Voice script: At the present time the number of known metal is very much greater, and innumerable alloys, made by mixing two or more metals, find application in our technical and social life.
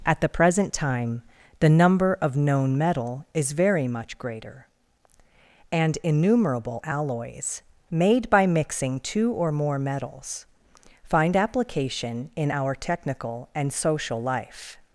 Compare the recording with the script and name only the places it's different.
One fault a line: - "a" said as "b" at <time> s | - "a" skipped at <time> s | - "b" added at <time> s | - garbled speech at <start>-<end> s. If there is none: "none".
none